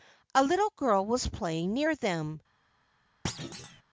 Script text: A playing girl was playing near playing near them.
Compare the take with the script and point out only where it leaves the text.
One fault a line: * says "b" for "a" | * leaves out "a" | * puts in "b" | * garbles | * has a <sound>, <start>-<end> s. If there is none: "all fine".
* says "little" for "playing"
* leaves out "playing near"
* has a thud, 3.2-3.8 s